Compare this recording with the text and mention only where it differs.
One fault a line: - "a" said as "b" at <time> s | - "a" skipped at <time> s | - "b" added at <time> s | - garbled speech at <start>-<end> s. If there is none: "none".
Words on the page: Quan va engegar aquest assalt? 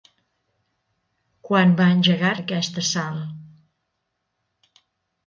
none